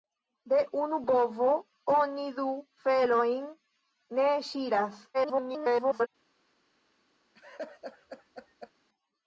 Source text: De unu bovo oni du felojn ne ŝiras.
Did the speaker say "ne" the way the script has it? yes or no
yes